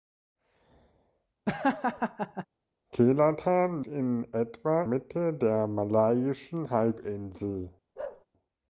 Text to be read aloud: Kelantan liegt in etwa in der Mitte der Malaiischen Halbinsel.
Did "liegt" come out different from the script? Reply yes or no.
yes